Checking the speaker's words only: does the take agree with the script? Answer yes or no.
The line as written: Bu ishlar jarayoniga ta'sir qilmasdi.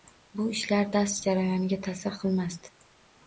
no